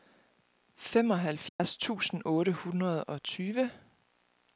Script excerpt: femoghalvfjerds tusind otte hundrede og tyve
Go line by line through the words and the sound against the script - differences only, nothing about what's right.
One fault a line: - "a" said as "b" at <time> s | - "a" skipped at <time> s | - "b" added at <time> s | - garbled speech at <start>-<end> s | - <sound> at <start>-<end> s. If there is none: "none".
- dropout at 1.5-1.6 s